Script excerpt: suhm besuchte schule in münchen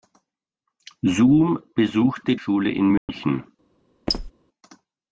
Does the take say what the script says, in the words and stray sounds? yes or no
no